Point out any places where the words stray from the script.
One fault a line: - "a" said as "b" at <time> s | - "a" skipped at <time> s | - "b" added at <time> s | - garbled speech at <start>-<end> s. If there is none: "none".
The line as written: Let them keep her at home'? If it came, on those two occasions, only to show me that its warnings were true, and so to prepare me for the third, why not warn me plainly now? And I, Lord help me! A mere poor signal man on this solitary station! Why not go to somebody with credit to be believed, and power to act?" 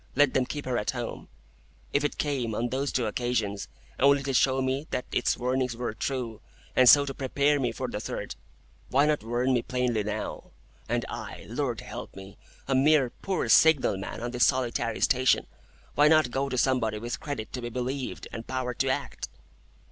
none